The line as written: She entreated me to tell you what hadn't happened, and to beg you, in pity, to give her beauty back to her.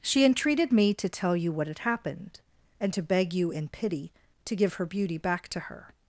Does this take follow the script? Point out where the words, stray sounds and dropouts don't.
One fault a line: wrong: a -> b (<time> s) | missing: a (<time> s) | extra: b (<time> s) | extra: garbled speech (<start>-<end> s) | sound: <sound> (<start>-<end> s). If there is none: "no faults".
wrong: hadn't -> had (1.7 s)